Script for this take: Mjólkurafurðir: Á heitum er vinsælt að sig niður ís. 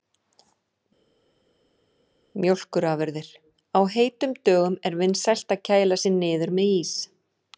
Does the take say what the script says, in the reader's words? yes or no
no